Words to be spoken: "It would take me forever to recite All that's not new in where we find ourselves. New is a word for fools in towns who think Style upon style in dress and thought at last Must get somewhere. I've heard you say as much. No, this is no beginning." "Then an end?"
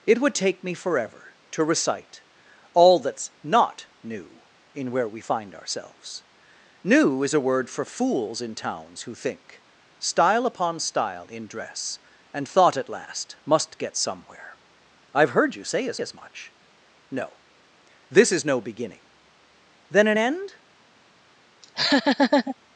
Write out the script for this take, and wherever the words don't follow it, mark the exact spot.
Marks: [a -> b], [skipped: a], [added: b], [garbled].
"It would take me forever to recite All that's not new in where we find ourselves. New is a word for fools in towns who think Style upon style in dress and thought at last Must get somewhere. I've heard you say as [added: as] much. No, this is no beginning." "Then an end?"